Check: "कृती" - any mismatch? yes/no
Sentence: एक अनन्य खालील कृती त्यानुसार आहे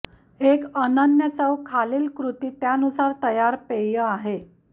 no